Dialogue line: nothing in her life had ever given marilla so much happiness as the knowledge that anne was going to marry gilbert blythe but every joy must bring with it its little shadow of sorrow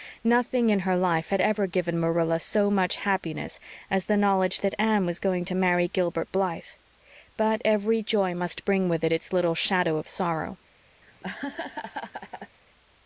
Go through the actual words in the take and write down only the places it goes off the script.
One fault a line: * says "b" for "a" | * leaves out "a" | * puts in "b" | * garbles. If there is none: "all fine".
all fine